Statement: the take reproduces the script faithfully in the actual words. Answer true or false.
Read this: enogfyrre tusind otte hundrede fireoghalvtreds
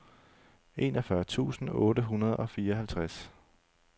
false